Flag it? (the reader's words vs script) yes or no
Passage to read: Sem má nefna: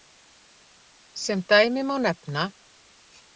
yes